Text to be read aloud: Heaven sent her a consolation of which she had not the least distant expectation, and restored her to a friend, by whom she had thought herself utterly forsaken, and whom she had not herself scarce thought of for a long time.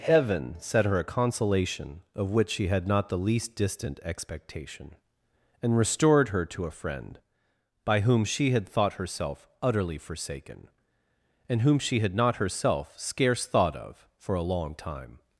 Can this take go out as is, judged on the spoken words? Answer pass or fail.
fail